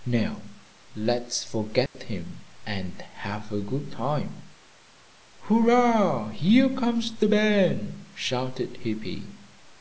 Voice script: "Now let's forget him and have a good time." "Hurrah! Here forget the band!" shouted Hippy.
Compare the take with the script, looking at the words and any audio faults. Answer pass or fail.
fail